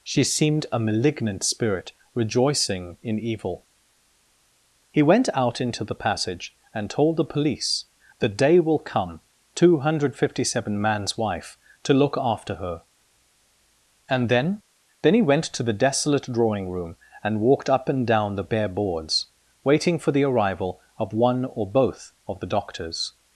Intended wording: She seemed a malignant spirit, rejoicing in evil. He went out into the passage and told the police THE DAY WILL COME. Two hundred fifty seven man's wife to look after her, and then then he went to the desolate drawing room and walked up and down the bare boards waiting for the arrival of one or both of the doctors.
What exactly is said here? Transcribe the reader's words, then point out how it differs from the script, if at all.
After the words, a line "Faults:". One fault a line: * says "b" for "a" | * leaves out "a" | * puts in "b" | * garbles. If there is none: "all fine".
She seemed a malignant spirit, rejoicing in evil. He went out into the passage and told the police THE DAY WILL COME. Two hundred fifty seven man's wife to look after her, and then then he went to the desolate drawing room and walked up and down the bare boards waiting for the arrival of one or both of the doctors.
Faults:
all fine